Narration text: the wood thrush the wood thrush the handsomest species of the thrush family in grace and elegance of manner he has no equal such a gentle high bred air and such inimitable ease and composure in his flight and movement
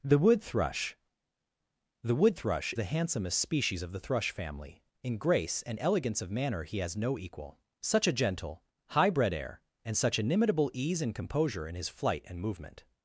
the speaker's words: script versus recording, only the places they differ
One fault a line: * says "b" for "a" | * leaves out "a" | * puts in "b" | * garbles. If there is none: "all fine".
all fine